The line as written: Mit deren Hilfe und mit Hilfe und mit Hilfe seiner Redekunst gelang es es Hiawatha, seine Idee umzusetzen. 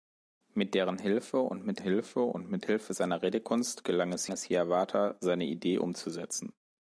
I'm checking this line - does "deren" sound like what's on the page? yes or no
yes